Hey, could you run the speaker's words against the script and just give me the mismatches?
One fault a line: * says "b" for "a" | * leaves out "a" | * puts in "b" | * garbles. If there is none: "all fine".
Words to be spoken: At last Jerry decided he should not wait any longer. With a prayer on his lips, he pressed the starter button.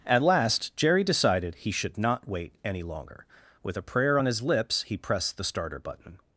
all fine